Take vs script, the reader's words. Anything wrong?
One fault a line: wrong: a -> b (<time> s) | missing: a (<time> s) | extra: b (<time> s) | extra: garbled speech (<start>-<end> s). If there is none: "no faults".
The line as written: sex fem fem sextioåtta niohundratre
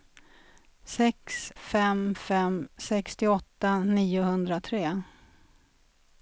no faults